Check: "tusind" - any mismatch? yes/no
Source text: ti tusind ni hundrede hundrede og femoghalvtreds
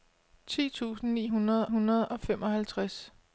no